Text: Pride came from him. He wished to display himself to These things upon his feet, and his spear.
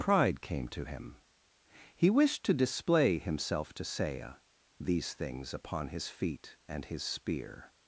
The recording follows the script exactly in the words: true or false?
false